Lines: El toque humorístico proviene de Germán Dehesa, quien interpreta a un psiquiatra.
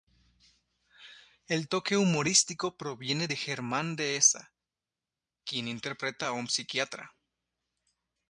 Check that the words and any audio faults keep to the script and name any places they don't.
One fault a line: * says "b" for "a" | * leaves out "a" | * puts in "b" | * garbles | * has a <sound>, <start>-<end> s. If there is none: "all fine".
all fine